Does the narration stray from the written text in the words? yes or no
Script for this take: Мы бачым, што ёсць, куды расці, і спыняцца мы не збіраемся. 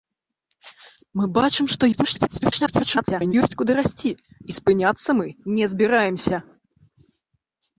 yes